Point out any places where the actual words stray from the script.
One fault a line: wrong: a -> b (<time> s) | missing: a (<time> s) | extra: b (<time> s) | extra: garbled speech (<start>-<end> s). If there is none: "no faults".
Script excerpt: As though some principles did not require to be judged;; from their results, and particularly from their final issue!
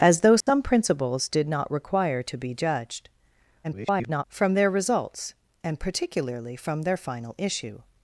extra: garbled speech (3.6-4.2 s)